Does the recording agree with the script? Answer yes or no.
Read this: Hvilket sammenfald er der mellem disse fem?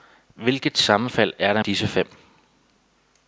no